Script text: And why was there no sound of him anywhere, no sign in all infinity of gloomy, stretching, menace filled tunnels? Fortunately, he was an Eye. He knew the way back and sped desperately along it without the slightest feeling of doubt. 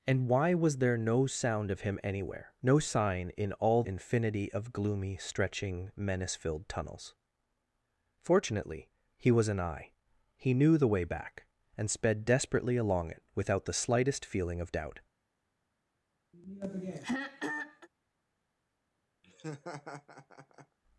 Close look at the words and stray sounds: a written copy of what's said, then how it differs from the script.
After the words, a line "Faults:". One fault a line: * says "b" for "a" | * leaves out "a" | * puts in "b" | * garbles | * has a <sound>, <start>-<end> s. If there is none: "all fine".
And why was there no sound of him anywhere, no sign in all infinity of gloomy, stretching, menace filled tunnels? Fortunately, he was an Eye. He knew the way back and sped desperately along it without the slightest feeling of doubt.
Faults:
* has a throat clearing, 16.3-17.9 s
* has a laugh, 19.2-20.8 s